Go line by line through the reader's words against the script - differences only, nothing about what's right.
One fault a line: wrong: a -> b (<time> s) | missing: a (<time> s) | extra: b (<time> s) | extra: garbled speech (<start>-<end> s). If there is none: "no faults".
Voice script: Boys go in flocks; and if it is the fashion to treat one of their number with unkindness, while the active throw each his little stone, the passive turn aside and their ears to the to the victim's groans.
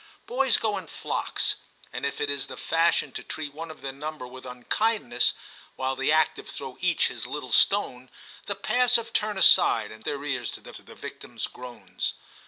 no faults